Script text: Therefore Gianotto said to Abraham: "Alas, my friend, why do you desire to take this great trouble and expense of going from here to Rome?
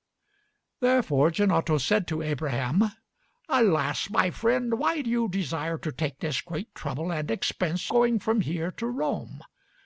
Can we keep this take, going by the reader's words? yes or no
no